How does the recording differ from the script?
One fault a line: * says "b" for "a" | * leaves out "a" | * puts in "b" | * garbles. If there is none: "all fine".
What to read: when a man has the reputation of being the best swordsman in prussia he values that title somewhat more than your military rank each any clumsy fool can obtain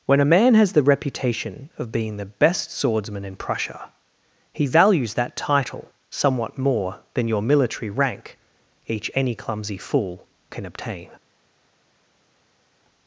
all fine